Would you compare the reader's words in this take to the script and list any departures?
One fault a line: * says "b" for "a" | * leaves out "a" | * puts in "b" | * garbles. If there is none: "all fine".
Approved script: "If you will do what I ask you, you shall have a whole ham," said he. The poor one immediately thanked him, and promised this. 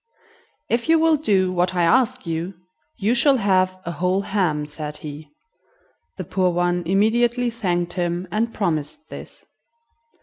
all fine